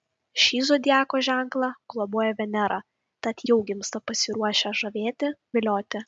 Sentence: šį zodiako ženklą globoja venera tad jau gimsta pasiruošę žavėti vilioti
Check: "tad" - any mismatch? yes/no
no